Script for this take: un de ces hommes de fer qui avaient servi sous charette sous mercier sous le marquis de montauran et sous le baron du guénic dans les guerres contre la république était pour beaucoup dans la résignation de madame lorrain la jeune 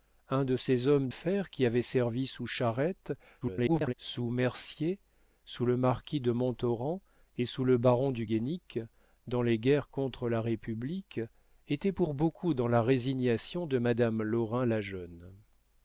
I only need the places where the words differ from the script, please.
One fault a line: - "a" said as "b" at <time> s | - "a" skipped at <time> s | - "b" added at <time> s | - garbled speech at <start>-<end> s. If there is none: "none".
- "de" skipped at 1.1 s
- garbled speech at 3.4-3.9 s